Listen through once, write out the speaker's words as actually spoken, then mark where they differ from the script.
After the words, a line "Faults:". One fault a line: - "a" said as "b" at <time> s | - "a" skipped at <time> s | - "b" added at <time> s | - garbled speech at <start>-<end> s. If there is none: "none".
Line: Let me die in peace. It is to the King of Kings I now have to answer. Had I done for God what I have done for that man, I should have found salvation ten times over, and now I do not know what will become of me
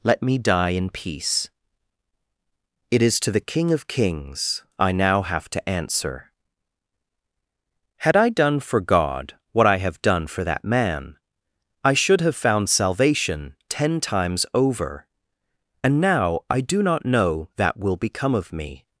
Let me die in peace. It is to the King of Kings I now have to answer. Had I done for God what I have done for that man, I should have found salvation ten times over, and now I do not know that will become of me
Faults:
- "what" said as "that" at 17.6 s